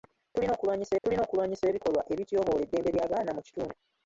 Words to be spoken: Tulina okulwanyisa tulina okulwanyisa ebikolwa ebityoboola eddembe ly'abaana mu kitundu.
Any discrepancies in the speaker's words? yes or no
no